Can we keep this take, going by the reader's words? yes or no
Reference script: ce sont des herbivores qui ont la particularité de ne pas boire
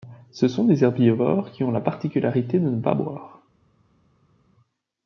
yes